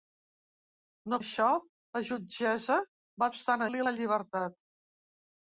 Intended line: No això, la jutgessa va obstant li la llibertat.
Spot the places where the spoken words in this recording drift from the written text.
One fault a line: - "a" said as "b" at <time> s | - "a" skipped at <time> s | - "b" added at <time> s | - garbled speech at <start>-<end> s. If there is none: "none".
none